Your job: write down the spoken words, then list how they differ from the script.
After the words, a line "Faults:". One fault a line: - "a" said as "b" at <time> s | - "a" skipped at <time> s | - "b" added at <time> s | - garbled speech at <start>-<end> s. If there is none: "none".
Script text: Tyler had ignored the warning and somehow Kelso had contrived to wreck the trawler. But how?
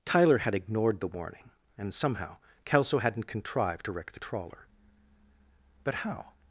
Tyler had ignored the warning and somehow Kelso hadn't contrived to wreck the trawler. But how?
Faults:
- "had" said as "hadn't" at 3.0 s